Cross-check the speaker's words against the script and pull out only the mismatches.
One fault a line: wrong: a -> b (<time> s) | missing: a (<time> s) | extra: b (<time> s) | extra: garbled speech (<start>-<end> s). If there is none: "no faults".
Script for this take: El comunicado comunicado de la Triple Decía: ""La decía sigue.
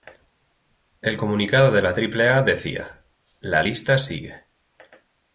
missing: comunicado (1.7 s)
extra: A (2.3 s)
wrong: decía -> lista (3.6 s)